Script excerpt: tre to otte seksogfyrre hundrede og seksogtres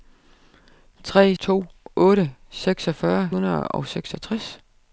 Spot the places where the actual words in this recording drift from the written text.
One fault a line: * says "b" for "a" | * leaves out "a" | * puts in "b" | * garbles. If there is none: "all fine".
all fine